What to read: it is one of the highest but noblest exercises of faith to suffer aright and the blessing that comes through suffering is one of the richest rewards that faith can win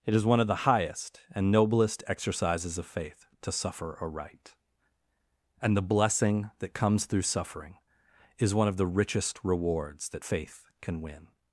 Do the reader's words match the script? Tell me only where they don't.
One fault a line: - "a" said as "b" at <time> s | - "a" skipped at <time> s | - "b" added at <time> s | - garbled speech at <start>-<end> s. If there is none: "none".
- "but" said as "and" at 1.3 s